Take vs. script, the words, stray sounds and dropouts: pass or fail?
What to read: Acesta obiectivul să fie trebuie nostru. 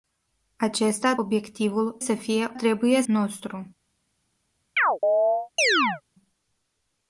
fail